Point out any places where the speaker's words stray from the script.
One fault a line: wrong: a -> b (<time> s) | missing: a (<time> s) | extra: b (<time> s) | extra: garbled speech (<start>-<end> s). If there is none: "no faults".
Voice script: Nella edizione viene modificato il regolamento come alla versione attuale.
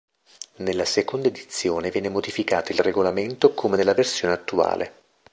extra: seconda (0.8 s)
wrong: alla -> nella (3.7 s)